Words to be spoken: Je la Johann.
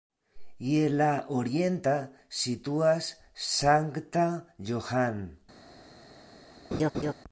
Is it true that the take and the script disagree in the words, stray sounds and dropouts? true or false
true